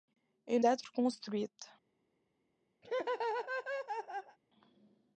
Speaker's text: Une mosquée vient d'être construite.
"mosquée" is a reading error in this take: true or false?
true